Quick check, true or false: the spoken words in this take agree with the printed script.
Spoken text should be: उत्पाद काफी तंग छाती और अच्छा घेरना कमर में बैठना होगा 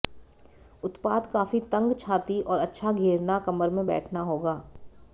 true